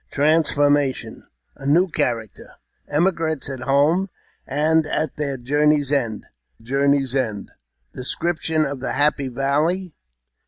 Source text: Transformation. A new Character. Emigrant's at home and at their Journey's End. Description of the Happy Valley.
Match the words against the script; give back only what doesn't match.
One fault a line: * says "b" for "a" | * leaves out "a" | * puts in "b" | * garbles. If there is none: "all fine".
* puts in "Journey's End"